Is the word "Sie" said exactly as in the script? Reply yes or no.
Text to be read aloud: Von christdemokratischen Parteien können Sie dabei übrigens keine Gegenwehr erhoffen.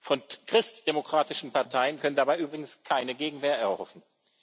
no